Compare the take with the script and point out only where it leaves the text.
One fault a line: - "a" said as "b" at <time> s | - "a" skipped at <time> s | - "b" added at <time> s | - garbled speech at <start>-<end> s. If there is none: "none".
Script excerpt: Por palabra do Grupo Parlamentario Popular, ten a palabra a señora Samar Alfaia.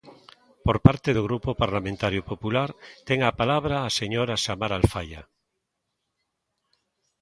- "palabra" said as "parte" at 0.8 s